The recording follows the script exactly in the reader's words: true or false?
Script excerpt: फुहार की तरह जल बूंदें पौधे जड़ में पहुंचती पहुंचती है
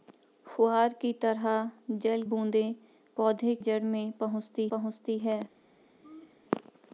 true